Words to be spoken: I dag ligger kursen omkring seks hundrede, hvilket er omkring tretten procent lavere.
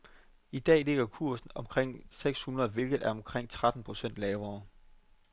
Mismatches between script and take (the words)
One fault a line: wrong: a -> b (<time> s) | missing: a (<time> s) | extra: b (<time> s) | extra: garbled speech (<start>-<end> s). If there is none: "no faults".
no faults